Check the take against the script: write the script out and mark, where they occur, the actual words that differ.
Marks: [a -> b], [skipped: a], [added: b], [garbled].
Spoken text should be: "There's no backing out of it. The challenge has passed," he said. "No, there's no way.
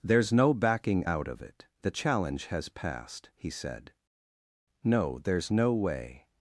"There's no backing out of it. The challenge has passed," he said. "No, there's no way.